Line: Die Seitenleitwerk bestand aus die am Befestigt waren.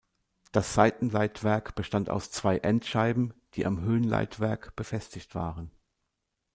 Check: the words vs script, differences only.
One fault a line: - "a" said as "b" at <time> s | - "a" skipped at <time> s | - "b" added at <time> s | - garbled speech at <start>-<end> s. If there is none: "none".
- "Die" said as "Das" at 0.5 s
- "zwei Endscheiben" added at 2.3 s
- "Höhenleitwerk" added at 3.8 s